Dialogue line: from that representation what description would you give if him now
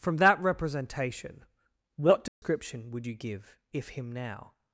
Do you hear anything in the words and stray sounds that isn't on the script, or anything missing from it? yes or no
yes